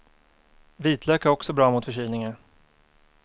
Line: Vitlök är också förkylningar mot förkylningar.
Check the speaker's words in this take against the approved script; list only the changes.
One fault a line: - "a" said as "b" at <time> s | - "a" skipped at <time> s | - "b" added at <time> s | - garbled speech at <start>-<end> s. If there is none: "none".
- "förkylningar" said as "bra" at 1.5 s